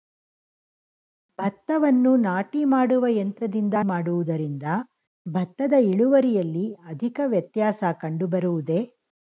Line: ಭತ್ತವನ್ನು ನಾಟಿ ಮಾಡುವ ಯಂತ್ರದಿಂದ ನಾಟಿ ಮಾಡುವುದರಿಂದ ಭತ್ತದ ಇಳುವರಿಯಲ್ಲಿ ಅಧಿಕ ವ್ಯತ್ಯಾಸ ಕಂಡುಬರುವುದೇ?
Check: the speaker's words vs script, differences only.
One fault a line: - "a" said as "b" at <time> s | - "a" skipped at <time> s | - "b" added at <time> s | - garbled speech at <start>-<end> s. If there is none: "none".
- "ನಾಟಿ" skipped at 3.7 s